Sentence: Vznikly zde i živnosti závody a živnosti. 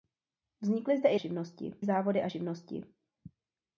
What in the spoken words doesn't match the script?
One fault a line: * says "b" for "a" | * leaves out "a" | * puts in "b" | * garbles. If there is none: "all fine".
all fine